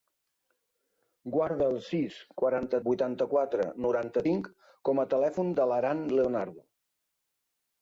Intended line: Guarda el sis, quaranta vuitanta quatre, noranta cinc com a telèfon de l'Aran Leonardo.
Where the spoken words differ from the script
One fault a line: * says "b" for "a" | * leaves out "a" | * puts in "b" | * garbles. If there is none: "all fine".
all fine